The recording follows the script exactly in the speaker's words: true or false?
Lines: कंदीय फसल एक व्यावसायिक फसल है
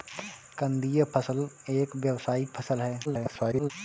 false